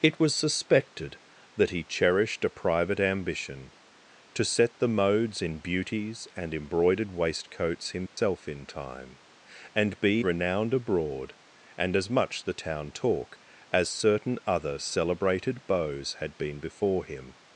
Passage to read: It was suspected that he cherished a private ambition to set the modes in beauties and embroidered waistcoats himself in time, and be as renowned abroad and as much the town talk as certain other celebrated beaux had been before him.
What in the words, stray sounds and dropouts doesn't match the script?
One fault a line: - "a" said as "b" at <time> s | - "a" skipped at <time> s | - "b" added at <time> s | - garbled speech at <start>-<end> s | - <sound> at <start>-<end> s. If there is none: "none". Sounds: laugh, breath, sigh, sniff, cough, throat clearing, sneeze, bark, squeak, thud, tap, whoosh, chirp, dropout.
- dropout at 8.1-8.2 s
- "as" skipped at 10.2 s